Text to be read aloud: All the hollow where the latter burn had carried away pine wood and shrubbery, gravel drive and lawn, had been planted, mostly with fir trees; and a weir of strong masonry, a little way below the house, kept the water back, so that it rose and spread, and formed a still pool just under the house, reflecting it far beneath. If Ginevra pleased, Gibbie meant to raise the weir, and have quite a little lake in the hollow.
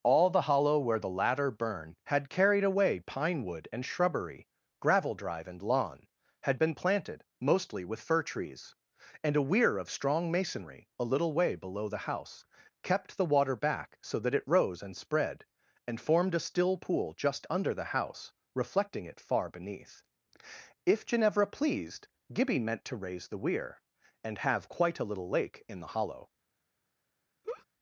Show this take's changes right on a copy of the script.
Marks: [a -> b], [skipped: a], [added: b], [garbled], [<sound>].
All the hollow where the latter burn had carried away pine wood and shrubbery, gravel drive and lawn, had been planted, mostly with fir trees; and a weir of strong masonry, a little way below the house, kept the water back, so that it rose and spread, and formed a still pool just under the house, reflecting it far beneath. If Ginevra pleased, Gibbie meant to raise the weir, and have quite a little lake in the hollow. [laugh]